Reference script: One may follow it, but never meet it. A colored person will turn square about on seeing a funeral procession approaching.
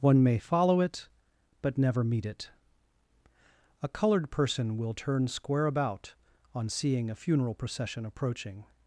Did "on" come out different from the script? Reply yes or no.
no